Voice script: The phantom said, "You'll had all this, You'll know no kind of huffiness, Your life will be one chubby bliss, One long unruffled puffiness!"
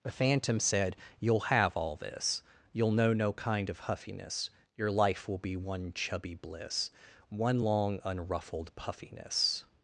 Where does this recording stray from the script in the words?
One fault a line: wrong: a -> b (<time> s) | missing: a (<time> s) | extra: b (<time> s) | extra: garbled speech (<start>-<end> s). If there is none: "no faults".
wrong: had -> have (1.4 s)